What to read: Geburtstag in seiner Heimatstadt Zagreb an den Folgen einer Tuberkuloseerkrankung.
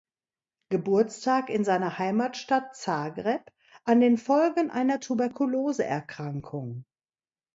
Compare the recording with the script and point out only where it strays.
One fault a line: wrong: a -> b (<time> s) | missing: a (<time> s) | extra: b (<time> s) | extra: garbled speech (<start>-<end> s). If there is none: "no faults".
no faults